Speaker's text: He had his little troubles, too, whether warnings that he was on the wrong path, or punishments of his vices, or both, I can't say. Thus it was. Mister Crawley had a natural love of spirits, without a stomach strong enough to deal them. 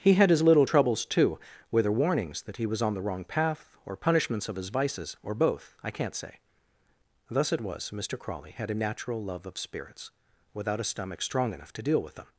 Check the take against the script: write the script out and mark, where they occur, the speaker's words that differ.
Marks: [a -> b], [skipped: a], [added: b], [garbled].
He had his little troubles, too, whether warnings that he was on the wrong path, or punishments of his vices, or both, I can't say. Thus it was. Mister Crawley had a natural love of spirits, without a stomach strong enough to deal [added: with] them.